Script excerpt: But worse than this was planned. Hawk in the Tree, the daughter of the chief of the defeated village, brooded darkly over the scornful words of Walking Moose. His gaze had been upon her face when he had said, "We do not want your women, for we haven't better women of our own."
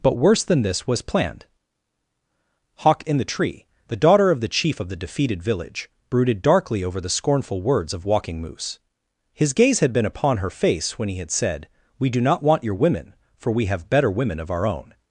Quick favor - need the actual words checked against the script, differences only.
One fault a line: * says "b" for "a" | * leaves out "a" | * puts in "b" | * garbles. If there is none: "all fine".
* says "have" for "haven't"